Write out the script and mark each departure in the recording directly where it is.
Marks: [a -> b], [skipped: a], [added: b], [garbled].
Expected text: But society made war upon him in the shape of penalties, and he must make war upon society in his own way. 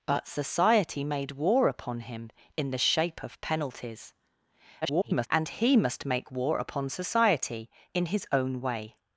But society made war upon him in the shape of penalties, [garbled] and he must make war upon society in his own way.